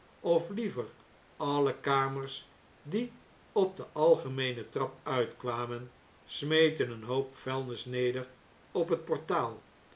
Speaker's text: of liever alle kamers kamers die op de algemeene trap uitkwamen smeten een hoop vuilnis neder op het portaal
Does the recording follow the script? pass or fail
fail